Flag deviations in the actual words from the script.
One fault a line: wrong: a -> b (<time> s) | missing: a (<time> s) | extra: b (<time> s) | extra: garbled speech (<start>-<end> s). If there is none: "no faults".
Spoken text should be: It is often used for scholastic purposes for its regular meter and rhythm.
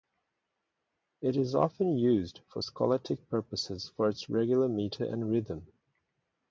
no faults